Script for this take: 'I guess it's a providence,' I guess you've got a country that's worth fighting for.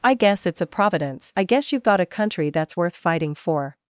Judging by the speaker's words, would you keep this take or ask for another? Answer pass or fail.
pass